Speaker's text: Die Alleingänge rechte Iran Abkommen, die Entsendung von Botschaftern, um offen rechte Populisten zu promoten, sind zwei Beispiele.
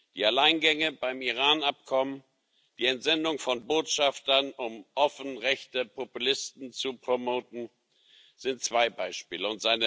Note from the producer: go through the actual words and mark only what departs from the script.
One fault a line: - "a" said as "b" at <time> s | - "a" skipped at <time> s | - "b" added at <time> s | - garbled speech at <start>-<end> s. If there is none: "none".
- "rechte" said as "beim" at 0.9 s